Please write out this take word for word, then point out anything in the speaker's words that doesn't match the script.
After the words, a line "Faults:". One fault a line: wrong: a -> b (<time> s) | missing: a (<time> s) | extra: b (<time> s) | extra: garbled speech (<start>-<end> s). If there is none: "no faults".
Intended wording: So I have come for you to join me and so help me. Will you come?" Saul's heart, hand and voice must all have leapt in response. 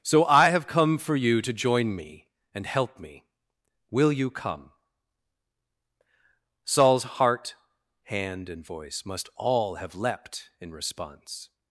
So I have come for you to join me and help me. Will you come?" Saul's heart, hand and voice must all have leapt in response.
Faults:
missing: so (2.6 s)